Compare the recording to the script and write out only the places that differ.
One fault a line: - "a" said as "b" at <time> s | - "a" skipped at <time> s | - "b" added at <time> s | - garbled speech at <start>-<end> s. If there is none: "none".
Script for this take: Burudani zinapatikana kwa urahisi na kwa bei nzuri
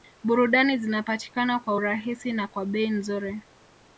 none